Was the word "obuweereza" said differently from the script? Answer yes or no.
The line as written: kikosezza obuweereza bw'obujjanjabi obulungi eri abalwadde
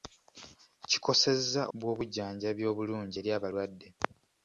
yes